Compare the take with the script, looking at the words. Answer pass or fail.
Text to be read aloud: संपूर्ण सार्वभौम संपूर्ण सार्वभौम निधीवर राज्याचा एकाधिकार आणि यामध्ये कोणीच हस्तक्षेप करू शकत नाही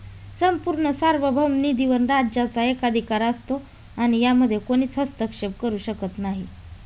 fail